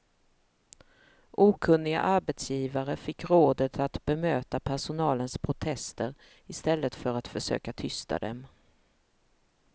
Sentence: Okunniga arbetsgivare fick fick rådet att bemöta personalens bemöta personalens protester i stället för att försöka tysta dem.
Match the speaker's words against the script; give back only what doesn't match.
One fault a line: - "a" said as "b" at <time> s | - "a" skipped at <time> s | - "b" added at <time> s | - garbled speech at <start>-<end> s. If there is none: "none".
- "fick" skipped at 3.3 s
- "bemöta personalens" skipped at 5.4 s